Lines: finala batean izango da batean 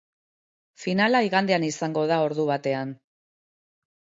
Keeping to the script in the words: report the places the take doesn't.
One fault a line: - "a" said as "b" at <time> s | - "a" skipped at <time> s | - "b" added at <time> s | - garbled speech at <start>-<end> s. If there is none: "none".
- "batean" said as "igandean" at 1.3 s
- "ordu" added at 2.3 s